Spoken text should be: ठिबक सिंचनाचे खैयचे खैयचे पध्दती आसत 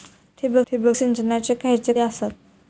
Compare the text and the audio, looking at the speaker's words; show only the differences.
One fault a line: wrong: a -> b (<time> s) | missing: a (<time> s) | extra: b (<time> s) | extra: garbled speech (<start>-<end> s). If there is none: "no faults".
extra: ठिबक (0.7 s)
missing: खैयचे पध्दती (1.9 s)